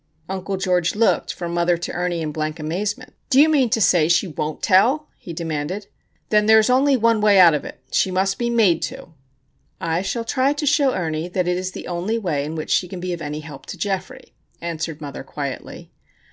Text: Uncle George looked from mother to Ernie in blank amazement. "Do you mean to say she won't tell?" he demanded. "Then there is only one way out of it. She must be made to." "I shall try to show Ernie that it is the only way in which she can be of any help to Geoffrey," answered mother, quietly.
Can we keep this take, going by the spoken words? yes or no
yes